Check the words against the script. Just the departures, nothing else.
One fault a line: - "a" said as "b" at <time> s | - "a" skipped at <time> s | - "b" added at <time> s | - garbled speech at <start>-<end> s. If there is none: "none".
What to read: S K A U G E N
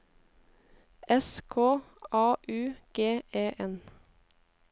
none